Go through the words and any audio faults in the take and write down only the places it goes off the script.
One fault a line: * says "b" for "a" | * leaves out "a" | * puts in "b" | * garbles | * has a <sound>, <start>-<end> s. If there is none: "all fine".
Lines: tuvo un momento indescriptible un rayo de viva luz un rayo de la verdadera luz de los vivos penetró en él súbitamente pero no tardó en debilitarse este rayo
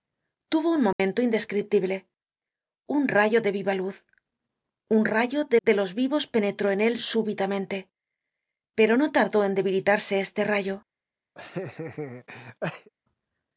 * has a dropout, 0.9-1.0 s
* leaves out "la verdadera luz"
* has a laugh, 11.3-12.9 s